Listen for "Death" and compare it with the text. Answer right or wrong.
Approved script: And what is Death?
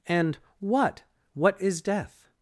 right